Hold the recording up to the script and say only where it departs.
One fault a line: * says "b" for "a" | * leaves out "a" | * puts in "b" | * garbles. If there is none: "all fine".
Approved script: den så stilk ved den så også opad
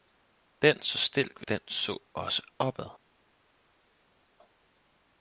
all fine